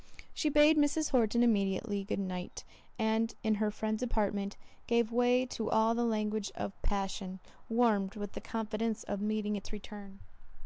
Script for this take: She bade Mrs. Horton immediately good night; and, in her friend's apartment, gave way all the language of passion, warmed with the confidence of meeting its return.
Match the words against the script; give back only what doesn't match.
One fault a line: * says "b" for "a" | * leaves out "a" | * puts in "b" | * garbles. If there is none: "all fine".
* puts in "to"